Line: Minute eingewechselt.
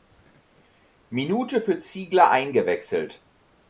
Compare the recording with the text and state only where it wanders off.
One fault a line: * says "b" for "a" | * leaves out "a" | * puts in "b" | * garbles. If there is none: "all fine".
* puts in "für Ziegler"